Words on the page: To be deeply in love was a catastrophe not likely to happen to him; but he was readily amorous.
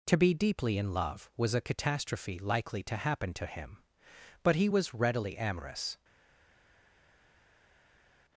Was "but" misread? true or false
false